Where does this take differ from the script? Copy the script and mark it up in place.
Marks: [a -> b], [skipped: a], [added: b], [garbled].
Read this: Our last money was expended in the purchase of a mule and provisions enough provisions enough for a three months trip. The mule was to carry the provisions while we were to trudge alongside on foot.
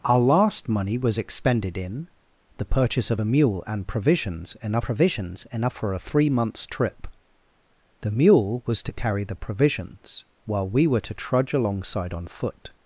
Our last money was expended in the purchase of a mule and provisions enough provisions enough for a three months trip. The mule was to carry the provisions while we were to trudge alongside on foot.